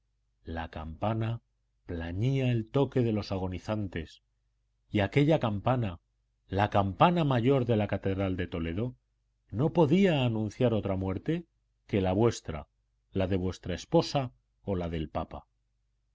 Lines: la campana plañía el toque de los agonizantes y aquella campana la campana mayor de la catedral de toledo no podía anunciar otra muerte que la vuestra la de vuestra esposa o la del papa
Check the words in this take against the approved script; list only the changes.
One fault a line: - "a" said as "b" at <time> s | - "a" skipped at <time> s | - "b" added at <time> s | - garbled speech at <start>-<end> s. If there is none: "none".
none